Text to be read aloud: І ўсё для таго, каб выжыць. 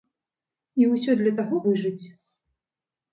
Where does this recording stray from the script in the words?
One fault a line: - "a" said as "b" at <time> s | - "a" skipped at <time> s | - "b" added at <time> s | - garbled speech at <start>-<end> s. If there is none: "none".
- "каб" skipped at 1.6 s